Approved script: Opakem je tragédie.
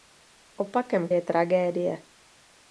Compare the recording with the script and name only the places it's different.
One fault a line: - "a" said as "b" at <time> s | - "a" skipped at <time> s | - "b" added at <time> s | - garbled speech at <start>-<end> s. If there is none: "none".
none